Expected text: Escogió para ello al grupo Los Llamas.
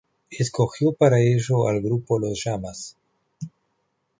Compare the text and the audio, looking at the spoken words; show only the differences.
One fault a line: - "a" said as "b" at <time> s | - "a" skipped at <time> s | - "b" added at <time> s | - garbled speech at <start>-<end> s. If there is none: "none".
none